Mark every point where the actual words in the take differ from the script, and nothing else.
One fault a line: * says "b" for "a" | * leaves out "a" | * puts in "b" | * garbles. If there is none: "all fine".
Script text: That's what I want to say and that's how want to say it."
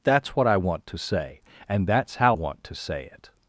all fine